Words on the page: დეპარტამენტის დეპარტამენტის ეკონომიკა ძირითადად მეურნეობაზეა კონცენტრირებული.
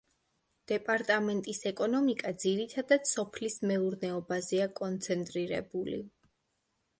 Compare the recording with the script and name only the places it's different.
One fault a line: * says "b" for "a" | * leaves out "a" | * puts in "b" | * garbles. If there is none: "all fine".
* leaves out "დეპარტამენტის"
* puts in "სოფლის"